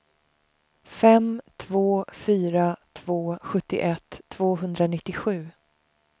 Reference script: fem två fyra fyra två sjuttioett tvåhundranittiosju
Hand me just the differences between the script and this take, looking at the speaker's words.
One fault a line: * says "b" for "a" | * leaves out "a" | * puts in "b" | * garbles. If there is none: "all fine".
* leaves out "fyra"